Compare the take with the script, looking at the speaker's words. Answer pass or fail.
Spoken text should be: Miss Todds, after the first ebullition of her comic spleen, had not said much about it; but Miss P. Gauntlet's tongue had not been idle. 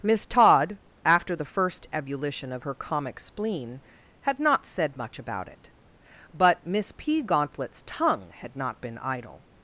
fail